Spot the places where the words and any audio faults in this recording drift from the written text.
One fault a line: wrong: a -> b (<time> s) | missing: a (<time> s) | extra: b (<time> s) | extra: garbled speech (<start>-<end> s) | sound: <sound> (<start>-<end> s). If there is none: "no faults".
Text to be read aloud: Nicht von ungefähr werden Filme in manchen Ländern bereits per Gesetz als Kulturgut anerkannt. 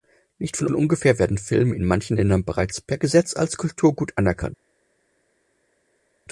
extra: von (0.6 s)